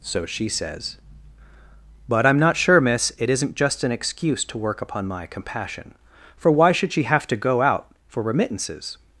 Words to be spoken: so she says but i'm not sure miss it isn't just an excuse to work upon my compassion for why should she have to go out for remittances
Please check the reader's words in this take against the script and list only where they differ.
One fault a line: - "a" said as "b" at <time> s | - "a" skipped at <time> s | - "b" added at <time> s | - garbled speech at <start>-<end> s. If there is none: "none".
none